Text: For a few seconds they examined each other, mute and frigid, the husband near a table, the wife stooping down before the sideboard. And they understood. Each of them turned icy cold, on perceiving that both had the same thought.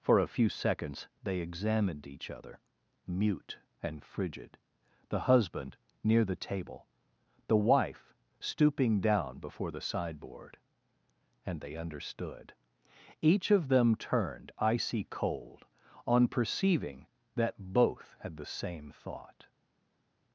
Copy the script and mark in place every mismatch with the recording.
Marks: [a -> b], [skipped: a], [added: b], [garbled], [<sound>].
For a few seconds they examined each other, mute and frigid, the husband near [a -> the] table, the wife stooping down before the sideboard. And they understood. Each of them turned icy cold, on perceiving that both had the same thought.